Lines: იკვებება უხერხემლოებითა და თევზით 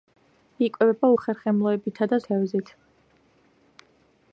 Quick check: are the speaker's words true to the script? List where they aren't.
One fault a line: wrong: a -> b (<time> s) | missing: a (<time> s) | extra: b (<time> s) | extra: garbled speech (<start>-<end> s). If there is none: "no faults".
no faults